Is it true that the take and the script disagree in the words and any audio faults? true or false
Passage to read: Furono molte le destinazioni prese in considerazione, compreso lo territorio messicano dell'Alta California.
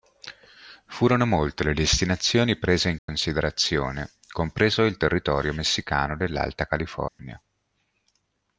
true